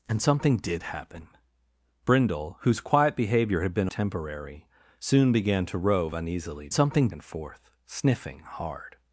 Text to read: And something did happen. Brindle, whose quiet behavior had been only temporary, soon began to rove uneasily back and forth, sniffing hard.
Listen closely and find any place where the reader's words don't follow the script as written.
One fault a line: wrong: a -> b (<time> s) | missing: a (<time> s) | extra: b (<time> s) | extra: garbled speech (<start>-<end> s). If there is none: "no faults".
missing: only (3.9 s)
wrong: back -> something (6.7 s)